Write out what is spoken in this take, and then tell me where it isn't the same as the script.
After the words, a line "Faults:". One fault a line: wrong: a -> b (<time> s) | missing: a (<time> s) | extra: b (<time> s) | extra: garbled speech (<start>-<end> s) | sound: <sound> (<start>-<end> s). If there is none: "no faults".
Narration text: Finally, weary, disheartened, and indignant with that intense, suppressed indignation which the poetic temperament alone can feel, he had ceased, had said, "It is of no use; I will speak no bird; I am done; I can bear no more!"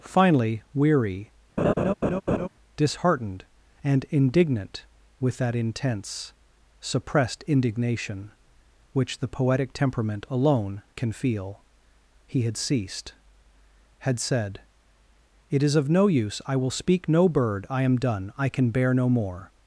Finally, weary, disheartened, and indignant with that intense, suppressed indignation which the poetic temperament alone can feel, he had ceased, had said, "It is of no use; I will speak no bird; I am done; I can bear no more!"
Faults:
sound: laugh (1.6-2.5 s)